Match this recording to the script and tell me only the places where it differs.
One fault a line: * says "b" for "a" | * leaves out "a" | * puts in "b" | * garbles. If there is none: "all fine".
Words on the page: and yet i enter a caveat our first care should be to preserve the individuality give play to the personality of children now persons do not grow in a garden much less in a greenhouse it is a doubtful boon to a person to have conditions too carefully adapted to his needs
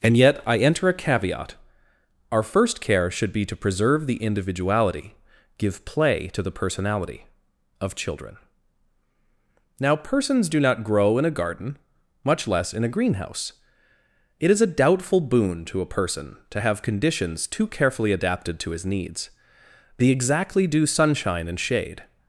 * puts in "the exactly due sunshine and shade"